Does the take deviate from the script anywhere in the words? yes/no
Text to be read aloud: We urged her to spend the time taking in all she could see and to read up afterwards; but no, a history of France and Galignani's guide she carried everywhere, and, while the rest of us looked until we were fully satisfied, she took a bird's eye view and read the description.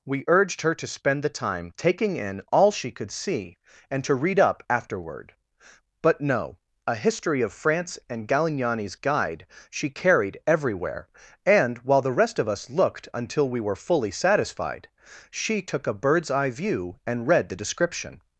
yes